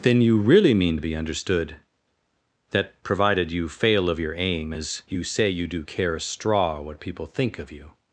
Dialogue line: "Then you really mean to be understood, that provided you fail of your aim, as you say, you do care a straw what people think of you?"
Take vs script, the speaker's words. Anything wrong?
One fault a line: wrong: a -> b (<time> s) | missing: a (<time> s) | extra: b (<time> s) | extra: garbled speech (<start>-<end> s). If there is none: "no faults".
no faults